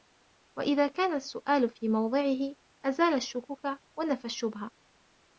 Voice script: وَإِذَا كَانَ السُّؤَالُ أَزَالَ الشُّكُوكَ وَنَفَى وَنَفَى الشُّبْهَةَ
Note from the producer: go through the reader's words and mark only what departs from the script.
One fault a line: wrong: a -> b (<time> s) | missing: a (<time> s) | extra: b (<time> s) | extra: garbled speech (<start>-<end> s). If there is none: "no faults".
extra: فِي مَوْضِعِهِ (1.7 s)
missing: وَنَفَى (4.2 s)